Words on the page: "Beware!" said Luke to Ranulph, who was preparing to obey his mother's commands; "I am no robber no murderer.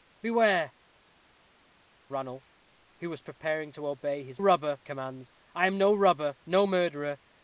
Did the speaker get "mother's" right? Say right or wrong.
wrong